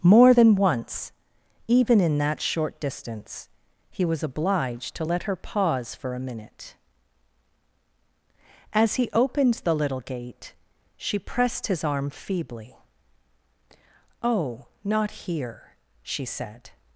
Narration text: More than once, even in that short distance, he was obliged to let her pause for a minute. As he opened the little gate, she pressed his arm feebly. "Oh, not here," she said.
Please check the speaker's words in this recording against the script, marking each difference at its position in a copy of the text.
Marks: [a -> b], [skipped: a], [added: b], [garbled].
More than once, even in that short distance, he was obliged to let her pause for a minute. As he opened the little gate, she pressed his arm feebly. "Oh, not here," she said.